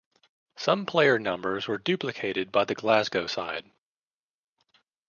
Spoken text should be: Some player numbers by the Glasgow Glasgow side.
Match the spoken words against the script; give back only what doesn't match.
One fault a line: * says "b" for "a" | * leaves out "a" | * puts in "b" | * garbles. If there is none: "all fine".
* puts in "were duplicated"
* leaves out "Glasgow"